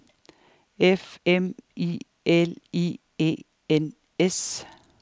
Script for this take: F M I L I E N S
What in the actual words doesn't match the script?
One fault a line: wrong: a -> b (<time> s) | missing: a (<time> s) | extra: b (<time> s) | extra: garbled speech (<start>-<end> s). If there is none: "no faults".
no faults